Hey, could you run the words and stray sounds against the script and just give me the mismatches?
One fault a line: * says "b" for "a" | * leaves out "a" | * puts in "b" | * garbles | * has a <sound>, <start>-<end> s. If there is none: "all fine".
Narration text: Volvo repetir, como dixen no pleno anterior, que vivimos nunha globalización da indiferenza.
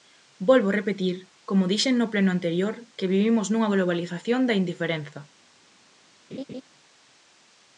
* has a laugh, 6.3-6.6 s